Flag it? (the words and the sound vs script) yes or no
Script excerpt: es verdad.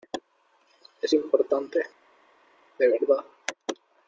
yes